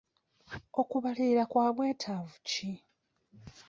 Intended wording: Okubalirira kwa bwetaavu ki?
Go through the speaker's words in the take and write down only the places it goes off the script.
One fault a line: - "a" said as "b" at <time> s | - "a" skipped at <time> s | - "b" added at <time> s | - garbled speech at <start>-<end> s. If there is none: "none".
none